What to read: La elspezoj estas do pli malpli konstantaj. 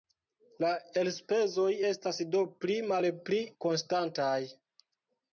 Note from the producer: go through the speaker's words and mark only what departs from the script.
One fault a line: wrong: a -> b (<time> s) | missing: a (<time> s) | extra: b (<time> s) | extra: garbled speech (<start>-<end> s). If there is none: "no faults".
no faults